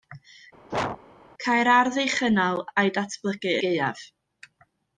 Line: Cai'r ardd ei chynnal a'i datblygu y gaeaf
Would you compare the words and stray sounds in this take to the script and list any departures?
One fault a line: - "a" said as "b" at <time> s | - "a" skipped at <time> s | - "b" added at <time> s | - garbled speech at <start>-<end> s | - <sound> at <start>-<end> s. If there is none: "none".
- sneeze at 0.7-1.0 s